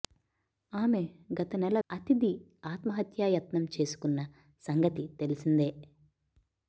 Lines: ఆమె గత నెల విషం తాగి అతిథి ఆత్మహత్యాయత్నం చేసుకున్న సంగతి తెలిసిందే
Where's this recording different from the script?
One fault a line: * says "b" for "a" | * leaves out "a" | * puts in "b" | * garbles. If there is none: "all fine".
* leaves out "విషం తాగి"